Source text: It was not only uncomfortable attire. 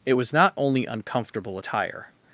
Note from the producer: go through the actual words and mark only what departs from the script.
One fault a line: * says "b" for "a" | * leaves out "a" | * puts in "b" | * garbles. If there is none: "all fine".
all fine